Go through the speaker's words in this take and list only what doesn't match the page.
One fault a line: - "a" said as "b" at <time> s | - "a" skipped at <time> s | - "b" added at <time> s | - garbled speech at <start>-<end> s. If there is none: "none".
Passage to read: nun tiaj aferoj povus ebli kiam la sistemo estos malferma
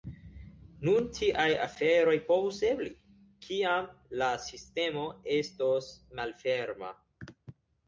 none